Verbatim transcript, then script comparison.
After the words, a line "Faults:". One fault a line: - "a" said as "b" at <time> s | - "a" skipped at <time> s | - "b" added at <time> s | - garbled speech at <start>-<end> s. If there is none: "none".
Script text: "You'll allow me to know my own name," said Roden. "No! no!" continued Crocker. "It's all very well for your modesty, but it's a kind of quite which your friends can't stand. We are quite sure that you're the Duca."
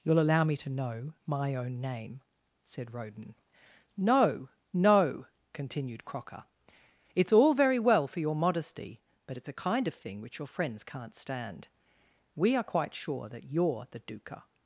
"You'll allow me to know my own name," said Roden. "No! no!" continued Crocker. "It's all very well for your modesty, but it's a kind of thing which your friends can't stand. We are quite sure that you're the Duca."
Faults:
- "quite" said as "thing" at 9.9 s